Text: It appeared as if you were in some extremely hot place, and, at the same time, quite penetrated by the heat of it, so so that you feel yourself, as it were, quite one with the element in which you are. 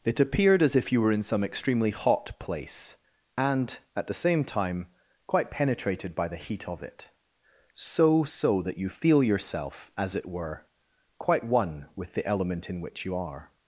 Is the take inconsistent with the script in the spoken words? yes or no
no